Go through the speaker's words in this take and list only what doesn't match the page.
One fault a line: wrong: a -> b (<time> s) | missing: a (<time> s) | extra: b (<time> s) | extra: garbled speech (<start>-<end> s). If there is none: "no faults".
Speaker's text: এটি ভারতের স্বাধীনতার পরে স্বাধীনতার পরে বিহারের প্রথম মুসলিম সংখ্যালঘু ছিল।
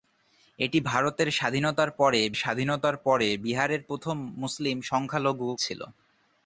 no faults